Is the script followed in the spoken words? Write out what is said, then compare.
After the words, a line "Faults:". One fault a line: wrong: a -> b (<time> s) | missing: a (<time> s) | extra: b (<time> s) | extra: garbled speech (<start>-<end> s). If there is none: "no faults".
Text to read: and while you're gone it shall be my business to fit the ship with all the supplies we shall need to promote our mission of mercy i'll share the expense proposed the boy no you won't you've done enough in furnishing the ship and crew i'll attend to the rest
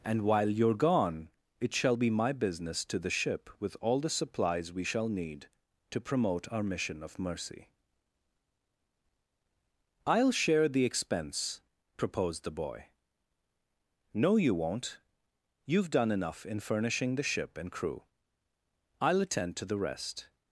and while you're gone it shall be my business to the ship with all the supplies we shall need to promote our mission of mercy i'll share the expense proposed the boy no you won't you've done enough in furnishing the ship and crew i'll attend to the rest
Faults:
missing: fit (3.0 s)